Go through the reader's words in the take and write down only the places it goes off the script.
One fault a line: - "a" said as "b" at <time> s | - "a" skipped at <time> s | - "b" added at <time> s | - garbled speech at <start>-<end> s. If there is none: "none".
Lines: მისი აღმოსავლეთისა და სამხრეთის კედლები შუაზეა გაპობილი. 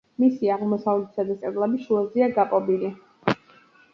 - "სამხრეთის" skipped at 1.4 s